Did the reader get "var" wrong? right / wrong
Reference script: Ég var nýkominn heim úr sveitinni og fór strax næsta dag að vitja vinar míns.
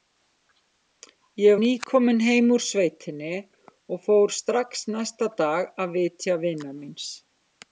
wrong